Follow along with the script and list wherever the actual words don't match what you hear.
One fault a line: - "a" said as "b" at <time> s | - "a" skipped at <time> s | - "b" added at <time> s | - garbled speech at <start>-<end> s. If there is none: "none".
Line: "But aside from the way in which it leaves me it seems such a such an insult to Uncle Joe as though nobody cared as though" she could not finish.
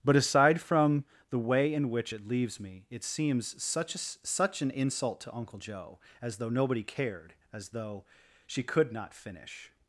none